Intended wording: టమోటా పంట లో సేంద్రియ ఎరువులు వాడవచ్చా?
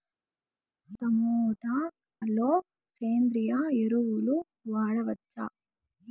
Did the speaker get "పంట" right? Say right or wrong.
wrong